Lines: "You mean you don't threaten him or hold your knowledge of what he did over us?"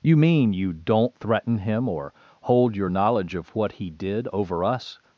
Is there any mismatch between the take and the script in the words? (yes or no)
no